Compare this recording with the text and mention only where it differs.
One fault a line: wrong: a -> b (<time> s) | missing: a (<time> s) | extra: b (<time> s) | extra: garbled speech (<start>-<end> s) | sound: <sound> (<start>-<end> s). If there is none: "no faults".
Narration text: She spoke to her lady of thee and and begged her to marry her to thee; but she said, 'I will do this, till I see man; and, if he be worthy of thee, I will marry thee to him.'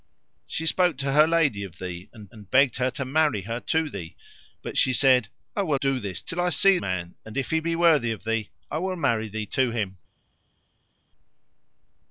no faults